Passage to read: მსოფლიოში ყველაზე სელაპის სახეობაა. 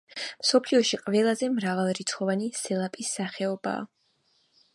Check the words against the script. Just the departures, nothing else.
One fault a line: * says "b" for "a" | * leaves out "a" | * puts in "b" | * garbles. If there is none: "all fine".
* puts in "მრავალრიცხოვანი"